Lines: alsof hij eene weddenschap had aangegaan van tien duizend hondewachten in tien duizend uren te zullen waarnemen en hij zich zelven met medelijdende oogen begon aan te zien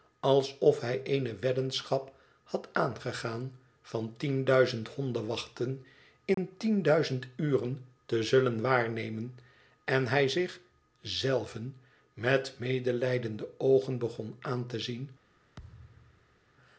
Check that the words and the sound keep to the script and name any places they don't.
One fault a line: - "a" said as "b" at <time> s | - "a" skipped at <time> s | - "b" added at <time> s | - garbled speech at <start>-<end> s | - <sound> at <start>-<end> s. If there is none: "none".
- dropout at 6.3-6.4 s
- thud at 15.6-16.4 s